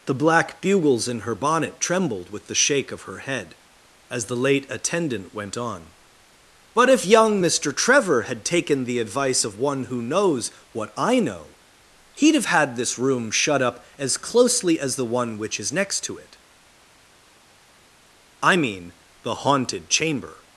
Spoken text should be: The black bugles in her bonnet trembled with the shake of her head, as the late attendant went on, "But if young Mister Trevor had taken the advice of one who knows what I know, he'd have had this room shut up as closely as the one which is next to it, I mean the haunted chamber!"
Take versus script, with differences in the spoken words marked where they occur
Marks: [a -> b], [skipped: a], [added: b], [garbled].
The black bugles in her bonnet trembled with the shake of her head, as the late attendant went on, "But if young Mister Trevor had taken the advice of one who knows what I know, he'd have had this room shut up as closely as the one which is next to it, I mean the haunted chamber!"